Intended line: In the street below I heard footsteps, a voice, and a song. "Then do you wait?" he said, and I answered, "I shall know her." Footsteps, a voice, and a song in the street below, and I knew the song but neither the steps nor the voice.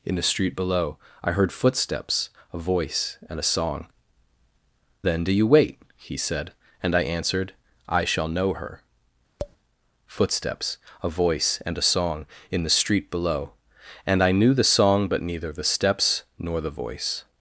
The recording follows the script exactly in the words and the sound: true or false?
false